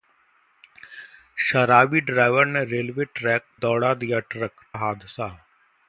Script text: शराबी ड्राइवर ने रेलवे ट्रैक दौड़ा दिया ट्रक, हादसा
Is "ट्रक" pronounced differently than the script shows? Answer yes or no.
no